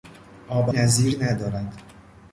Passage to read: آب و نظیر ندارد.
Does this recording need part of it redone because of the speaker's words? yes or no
no